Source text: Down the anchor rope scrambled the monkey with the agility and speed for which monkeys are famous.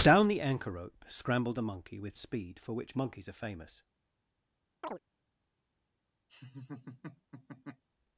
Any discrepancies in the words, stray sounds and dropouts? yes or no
yes